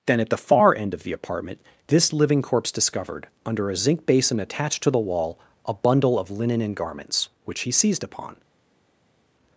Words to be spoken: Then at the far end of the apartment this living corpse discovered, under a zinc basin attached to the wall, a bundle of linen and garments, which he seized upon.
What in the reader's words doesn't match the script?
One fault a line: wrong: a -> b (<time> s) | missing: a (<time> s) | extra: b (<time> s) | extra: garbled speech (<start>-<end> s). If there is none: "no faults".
no faults